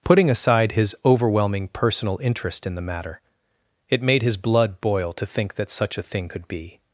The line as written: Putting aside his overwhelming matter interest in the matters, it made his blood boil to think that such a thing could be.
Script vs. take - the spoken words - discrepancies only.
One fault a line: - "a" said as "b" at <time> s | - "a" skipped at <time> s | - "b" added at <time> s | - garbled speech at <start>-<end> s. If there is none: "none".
- "matter" said as "personal" at 1.7 s
- "matters" said as "matter" at 2.8 s